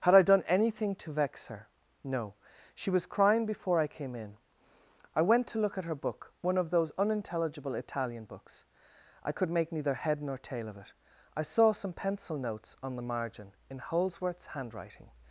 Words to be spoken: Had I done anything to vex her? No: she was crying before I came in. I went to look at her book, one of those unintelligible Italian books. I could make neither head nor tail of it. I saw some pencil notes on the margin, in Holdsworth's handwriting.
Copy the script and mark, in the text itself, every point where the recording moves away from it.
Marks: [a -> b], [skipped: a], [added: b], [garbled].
Had I done anything to vex her? No: she was crying before I came in. I went to look at her book, one of those unintelligible Italian books. I could make neither head nor tail of it. I saw some pencil notes on the margin, in Holdsworth's handwriting.